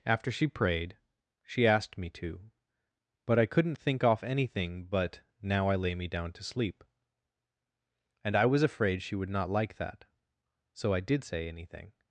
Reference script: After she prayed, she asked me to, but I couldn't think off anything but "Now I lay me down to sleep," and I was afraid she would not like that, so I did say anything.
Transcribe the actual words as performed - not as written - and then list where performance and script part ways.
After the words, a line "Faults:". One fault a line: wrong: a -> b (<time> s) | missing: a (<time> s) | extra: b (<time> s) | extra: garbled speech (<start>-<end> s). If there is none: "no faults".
After she prayed, she asked me to, but I couldn't think off anything but "Now I lay me down to sleep," and I was afraid she would not like that, so I did say anything.
Faults:
no faults